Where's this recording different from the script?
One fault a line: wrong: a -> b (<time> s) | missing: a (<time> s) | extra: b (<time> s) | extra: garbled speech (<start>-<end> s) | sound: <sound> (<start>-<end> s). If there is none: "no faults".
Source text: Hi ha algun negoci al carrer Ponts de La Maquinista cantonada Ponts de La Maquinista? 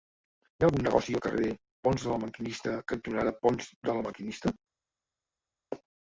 no faults